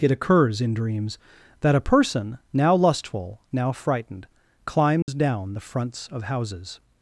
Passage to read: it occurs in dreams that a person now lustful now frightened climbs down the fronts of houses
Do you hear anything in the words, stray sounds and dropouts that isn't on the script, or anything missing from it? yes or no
yes